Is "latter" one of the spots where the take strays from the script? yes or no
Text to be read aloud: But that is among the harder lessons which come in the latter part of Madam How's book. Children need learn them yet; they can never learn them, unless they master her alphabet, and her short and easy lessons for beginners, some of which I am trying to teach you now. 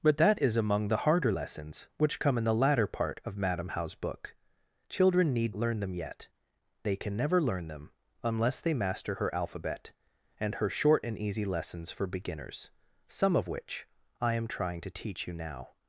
no